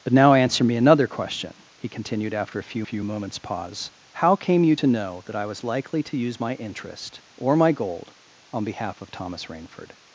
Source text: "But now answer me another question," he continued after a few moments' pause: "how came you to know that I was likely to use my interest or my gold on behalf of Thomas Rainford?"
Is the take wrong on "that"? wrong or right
right